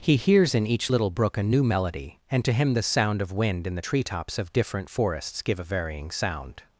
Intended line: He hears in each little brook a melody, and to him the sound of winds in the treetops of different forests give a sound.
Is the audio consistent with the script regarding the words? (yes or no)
no